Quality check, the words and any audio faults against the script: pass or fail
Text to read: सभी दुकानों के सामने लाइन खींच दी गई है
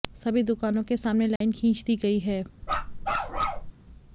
fail